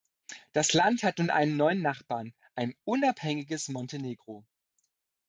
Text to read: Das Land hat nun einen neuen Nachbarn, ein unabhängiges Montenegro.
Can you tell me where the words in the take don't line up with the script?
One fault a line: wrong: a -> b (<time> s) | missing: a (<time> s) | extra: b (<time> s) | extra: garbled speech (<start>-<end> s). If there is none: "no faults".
no faults